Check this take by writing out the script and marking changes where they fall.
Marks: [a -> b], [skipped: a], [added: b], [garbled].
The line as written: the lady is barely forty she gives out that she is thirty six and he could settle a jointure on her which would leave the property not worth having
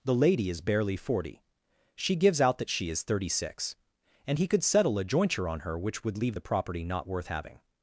the lady is barely forty she gives out that she is thirty six and he could settle a jointure on her which would leave the property not worth having